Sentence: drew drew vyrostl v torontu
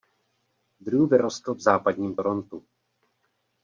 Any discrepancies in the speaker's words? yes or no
yes